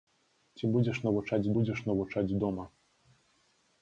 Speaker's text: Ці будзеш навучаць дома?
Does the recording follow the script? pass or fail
fail